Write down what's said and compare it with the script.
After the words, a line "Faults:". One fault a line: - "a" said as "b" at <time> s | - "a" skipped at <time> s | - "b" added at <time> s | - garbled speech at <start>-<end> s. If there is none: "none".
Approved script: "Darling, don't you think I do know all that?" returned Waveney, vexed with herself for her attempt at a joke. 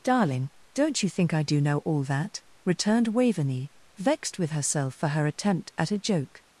"Darling, don't you think I do know all that?" returned Waveney, vexed with herself for her attempt at a joke.
Faults:
none